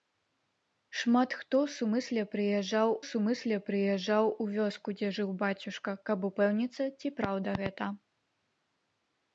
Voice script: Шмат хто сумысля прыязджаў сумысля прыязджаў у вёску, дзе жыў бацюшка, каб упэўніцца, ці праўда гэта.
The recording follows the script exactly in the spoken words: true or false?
true